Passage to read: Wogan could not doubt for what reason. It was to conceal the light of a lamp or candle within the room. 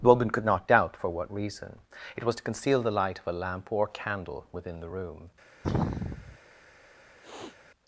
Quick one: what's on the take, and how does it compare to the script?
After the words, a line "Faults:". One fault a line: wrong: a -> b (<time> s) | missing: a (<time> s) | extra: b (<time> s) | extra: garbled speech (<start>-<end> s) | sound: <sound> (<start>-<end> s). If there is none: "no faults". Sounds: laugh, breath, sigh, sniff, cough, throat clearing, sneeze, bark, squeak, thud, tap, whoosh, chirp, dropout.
The woman could not doubt for what reason. It was to conceal the light of a lamp or candle within the room.
Faults:
wrong: Wogan -> The woman (0.0 s)
sound: sneeze (5.6-6.4 s)
sound: sniff (7.2-7.6 s)